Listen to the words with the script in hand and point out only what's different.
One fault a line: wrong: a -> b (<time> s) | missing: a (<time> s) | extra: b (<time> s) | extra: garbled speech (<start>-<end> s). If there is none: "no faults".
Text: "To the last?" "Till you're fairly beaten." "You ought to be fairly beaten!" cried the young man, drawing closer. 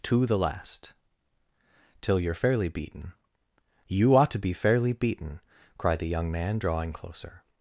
no faults